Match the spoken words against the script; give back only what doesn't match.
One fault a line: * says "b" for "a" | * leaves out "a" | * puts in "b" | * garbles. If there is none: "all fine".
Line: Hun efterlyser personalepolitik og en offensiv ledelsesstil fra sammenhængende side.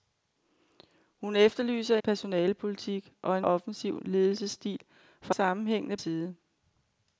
all fine